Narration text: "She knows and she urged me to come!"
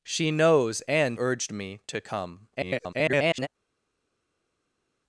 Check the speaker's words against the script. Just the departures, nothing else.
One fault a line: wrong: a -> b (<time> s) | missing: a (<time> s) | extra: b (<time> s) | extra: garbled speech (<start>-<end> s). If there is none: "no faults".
missing: she (1.2 s)
extra: garbled speech (2.5-3.5 s)